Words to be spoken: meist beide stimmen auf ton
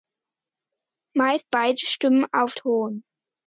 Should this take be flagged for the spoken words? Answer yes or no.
no